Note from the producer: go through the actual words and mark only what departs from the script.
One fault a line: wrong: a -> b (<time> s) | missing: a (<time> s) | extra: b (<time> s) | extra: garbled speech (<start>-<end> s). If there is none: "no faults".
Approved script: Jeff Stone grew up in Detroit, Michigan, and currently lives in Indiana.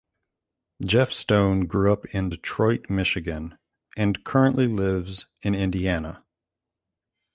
no faults